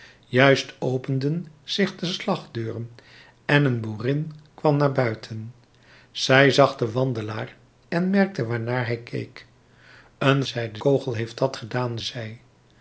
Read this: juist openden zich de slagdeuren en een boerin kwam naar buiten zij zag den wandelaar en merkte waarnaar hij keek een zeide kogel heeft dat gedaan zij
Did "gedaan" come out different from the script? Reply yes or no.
no